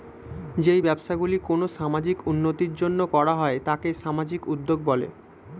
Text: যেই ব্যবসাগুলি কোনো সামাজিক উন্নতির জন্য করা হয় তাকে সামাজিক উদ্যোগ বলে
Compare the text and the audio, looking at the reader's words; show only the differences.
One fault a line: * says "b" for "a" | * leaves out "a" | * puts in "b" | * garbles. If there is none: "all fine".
all fine